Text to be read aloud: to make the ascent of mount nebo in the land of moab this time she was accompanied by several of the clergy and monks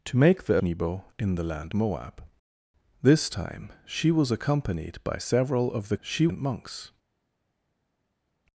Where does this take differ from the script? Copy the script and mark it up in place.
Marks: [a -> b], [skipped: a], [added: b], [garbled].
to make the [skipped: ascent of mount] nebo in the land [skipped: of] moab this time she was accompanied by several of the [clergy -> she] and monks